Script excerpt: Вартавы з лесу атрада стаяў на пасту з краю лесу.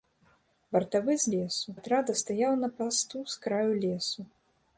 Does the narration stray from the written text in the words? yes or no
no